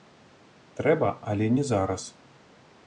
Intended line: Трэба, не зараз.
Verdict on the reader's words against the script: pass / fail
fail